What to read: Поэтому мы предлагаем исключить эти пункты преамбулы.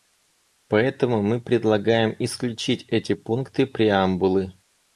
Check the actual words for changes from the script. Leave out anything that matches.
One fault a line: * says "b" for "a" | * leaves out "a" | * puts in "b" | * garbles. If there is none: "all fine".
all fine